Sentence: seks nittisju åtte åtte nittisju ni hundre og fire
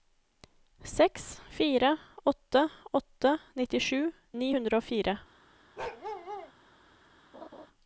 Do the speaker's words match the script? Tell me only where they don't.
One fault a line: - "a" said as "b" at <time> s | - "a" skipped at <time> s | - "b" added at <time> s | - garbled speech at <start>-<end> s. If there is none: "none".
- "nittisju" said as "fire" at 1.5 s